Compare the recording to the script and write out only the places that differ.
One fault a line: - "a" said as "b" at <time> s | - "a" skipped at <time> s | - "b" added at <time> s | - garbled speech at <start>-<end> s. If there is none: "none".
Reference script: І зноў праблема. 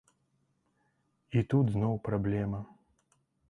- "тут" added at 1.5 s